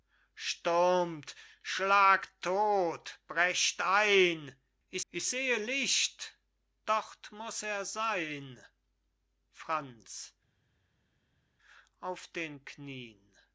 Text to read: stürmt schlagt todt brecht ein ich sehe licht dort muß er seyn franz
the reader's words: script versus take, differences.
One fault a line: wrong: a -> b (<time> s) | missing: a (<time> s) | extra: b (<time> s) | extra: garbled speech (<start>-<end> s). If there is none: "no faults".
extra: ich (5.1 s)